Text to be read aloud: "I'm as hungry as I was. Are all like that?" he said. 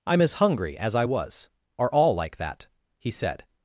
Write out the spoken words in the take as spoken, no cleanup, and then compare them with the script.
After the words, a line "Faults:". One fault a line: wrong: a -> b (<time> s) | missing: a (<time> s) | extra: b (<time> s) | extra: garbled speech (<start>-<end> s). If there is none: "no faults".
"I'm as hungry as I was. Are all like that?" he said.
Faults:
no faults